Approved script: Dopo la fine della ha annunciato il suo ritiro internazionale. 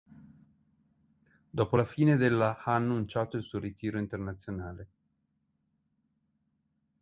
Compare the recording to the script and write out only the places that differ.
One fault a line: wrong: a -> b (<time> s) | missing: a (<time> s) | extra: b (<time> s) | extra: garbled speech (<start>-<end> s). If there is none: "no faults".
no faults